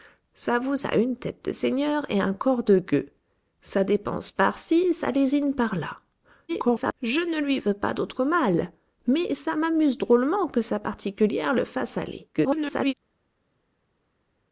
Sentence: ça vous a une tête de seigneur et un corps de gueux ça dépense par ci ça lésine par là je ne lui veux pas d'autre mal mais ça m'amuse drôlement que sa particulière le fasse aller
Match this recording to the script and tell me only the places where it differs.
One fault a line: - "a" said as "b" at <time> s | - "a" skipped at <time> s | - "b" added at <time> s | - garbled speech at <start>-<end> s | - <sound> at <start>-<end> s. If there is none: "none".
- garbled speech at 6.5-6.9 s
- garbled speech at 12.3-12.9 s